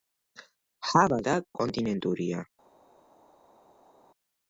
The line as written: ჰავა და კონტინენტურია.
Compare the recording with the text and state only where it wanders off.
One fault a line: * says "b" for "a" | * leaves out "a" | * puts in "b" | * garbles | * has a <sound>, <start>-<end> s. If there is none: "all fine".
all fine